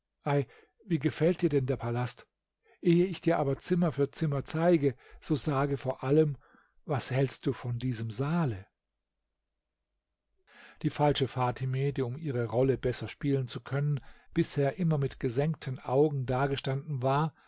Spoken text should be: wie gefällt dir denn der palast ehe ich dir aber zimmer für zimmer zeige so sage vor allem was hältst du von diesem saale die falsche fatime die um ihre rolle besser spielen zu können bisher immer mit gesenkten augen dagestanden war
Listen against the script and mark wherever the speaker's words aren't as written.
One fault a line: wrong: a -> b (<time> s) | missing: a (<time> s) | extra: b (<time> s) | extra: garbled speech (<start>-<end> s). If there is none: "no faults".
no faults